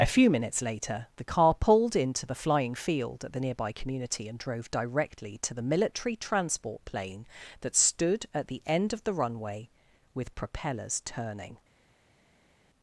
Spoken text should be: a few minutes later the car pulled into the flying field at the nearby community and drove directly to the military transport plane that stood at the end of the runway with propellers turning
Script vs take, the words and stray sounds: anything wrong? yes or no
no